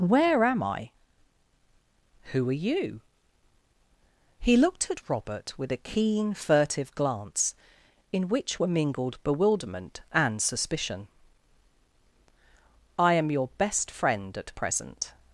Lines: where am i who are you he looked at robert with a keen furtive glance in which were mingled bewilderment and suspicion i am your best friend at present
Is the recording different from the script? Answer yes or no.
no